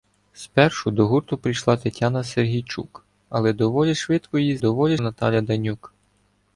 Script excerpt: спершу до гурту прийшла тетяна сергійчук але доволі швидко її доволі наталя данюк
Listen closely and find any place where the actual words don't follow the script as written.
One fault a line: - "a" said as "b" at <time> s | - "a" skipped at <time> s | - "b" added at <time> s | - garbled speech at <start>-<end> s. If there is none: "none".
none